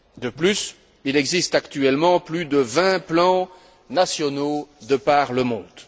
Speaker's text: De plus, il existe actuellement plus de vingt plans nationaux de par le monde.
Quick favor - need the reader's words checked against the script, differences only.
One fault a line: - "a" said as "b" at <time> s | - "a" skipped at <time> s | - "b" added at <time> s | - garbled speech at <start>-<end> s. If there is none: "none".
none